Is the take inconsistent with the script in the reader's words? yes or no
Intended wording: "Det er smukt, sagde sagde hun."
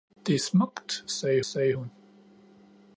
no